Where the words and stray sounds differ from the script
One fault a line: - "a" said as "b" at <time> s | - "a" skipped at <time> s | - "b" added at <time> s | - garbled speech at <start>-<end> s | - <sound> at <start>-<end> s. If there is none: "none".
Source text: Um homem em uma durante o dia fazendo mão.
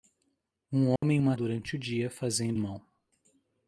- dropout at 1.0-1.0 s